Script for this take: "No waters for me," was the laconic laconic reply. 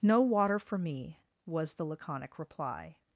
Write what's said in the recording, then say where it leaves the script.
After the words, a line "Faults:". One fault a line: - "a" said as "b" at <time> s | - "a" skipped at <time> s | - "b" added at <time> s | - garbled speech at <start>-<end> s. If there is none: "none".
"No water for me," was the laconic reply.
Faults:
- "waters" said as "water" at 0.2 s
- "laconic" skipped at 2.4 s